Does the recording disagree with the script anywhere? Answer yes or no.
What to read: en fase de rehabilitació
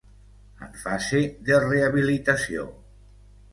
no